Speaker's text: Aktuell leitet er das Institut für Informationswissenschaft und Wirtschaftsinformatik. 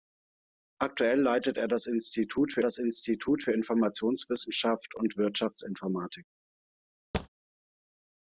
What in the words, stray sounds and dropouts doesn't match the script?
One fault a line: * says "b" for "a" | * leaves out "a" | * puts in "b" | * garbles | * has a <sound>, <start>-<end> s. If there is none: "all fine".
* puts in "das Institut für"
* has a thud, 7.1-7.3 s